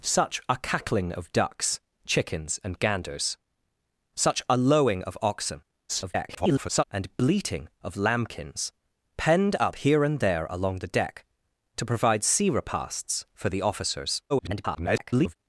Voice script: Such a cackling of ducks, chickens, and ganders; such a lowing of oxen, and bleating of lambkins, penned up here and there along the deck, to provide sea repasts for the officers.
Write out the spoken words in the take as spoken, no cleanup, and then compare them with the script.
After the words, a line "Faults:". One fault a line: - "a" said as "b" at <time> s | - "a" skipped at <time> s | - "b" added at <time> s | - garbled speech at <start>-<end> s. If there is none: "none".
Such a cackling of ducks, chickens, and ganders; such a lowing of oxen, [garbled] and bleating of lambkins, penned up here and there along the deck, to provide sea repasts for the officers. [garbled]
Faults:
- garbled speech at 5.9-6.8 s
- garbled speech at 14.3-15.4 s